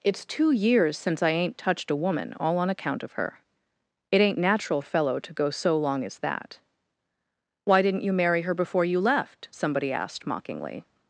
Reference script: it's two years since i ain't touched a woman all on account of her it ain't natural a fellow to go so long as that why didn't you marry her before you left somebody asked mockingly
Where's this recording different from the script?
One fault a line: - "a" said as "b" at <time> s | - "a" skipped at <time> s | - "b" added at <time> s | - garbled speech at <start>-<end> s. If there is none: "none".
none